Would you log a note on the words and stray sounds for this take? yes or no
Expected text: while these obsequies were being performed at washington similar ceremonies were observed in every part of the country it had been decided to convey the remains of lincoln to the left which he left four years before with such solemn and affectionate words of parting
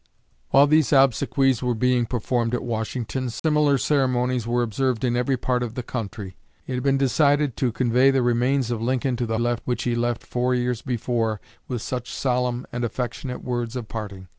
yes